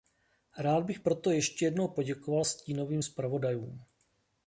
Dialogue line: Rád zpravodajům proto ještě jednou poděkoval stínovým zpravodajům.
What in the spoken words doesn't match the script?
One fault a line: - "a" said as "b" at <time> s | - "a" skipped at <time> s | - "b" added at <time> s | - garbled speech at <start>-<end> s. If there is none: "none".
- "zpravodajům" said as "bych" at 0.8 s